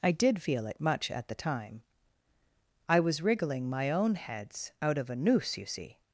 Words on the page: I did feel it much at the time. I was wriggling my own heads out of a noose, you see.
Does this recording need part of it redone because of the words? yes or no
no